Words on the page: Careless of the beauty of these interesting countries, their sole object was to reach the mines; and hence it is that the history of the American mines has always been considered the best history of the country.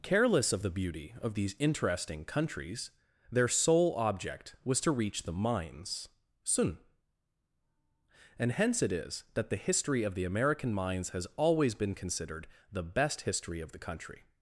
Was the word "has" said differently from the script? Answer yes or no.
no